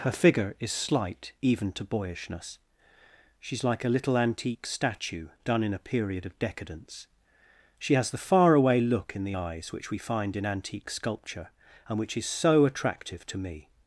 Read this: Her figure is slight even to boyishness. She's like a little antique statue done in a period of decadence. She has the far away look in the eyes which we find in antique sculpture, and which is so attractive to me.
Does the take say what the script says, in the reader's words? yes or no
yes